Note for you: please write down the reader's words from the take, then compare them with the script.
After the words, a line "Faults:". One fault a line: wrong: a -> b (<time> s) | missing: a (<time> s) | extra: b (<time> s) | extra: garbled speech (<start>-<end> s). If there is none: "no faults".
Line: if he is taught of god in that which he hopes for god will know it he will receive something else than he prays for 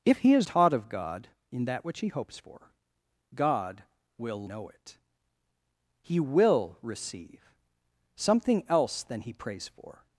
if he is taught of god in that which he hopes for god will know it he will receive something else than he prays for
Faults:
no faults